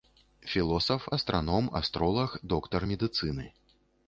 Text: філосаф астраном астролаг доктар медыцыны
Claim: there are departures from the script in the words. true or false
false